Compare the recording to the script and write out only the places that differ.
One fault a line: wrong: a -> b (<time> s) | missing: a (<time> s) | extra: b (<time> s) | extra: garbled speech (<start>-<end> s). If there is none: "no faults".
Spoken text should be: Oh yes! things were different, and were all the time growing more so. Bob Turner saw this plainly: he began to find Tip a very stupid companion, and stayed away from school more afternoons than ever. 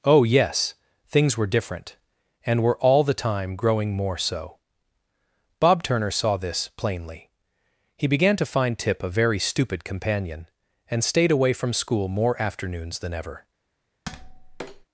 no faults